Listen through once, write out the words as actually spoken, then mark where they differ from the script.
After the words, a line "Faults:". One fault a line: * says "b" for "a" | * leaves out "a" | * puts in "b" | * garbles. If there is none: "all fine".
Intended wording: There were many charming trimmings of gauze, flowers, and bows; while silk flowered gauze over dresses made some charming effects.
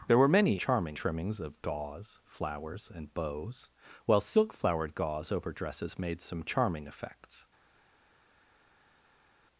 There were many charming trimmings of gauze, flowers, and bows; while silk flowered gauze over dresses made some charming effects.
Faults:
all fine